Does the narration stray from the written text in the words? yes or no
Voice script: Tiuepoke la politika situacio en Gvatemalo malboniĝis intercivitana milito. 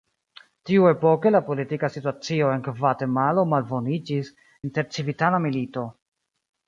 no